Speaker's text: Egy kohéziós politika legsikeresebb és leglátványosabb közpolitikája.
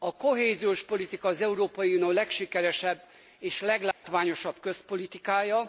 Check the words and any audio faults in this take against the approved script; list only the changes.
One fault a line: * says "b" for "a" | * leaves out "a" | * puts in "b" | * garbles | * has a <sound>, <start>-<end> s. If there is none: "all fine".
* says "A" for "Egy"
* puts in "az Európai Unió"
* has a dropout, 3.9-4.0 s